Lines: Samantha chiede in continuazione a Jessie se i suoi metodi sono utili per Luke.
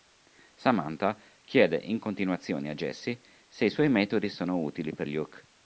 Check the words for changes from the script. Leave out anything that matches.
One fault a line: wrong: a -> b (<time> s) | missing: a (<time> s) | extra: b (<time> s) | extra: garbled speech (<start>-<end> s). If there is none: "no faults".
no faults